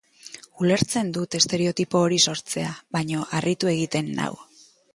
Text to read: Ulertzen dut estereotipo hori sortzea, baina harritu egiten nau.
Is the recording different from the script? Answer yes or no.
no